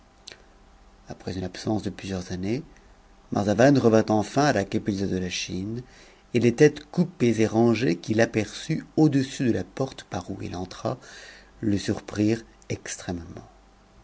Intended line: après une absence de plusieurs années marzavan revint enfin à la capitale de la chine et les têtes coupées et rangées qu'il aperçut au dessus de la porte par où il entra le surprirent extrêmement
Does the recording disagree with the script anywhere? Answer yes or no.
no